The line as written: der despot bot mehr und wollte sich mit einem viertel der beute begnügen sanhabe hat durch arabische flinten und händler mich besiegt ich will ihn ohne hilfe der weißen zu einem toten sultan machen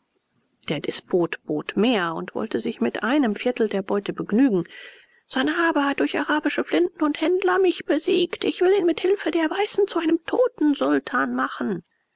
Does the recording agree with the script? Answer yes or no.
no